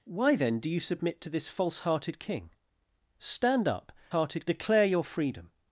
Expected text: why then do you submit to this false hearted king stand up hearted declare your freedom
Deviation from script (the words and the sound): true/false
false